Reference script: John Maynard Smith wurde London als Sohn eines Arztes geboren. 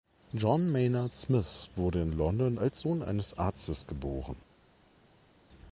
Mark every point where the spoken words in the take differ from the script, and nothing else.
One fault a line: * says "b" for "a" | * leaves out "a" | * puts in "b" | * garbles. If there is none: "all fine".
* puts in "in"